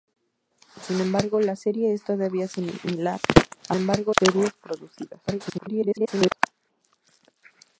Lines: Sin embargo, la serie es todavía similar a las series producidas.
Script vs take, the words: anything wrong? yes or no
yes